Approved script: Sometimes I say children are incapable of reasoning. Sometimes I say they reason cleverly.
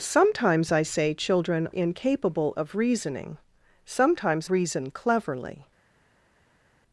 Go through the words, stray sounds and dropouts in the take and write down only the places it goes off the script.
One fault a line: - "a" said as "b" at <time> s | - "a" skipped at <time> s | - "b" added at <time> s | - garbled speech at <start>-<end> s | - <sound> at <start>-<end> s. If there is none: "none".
- "are" skipped at 1.7 s
- "I say they" skipped at 4.5 s